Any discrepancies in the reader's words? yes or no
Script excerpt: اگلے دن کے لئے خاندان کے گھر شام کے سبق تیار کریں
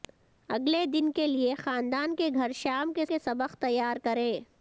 yes